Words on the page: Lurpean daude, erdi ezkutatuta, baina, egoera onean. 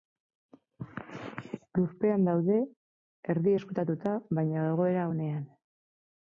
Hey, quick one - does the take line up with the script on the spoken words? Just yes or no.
yes